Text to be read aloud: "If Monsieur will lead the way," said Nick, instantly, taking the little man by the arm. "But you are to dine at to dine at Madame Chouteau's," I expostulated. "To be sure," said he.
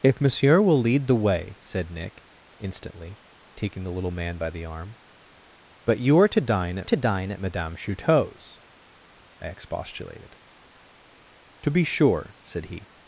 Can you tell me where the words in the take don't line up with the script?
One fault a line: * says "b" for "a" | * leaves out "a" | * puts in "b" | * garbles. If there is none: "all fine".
all fine